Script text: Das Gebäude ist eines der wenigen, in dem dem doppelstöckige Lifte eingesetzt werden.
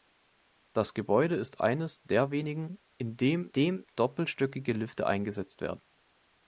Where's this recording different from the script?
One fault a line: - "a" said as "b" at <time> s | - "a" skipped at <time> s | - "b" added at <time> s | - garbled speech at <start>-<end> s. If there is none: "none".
none